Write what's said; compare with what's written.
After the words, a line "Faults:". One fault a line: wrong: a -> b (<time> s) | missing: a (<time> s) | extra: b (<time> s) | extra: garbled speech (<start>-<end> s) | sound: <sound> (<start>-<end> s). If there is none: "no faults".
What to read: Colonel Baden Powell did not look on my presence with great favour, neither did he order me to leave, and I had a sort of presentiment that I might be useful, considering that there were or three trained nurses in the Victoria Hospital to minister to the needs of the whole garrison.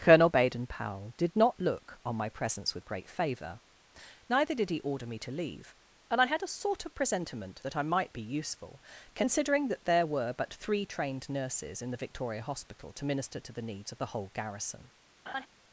Colonel Baden Powell did not look on my presence with great favour, neither did he order me to leave, and I had a sort of presentiment that I might be useful, considering that there were but three trained nurses in the Victoria Hospital to minister to the needs of the whole garrison.
Faults:
wrong: or -> but (10.3 s)
sound: laugh (15.3-15.5 s)